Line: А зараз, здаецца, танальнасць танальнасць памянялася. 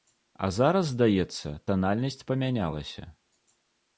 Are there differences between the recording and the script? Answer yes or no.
yes